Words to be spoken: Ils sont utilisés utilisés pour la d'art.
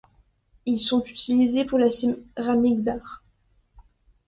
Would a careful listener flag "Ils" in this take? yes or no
no